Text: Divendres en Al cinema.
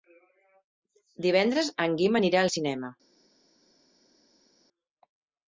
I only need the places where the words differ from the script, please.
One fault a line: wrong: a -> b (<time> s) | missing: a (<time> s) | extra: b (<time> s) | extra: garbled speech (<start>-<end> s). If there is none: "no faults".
extra: Guim anirà (2.0 s)